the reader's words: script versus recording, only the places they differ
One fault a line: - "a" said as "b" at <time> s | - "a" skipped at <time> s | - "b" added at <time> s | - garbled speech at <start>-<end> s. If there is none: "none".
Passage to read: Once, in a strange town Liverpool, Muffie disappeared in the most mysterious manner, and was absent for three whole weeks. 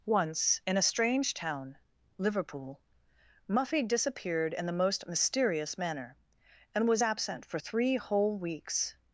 none